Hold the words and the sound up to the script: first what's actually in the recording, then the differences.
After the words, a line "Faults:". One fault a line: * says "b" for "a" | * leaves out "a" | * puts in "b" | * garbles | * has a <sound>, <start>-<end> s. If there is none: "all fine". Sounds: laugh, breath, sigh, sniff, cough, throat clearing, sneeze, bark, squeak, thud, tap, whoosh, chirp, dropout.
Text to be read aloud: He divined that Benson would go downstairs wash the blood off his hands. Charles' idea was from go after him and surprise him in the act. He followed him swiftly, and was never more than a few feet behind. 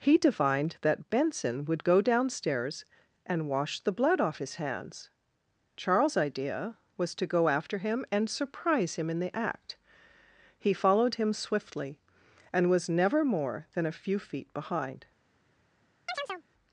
He divined that Benson would go downstairs and wash the blood off his hands. Charles' idea was to go after him and surprise him in the act. He followed him swiftly, and was never more than a few feet behind.
Faults:
* puts in "and"
* says "to" for "from"
* has a chirp, 16.1-16.4 s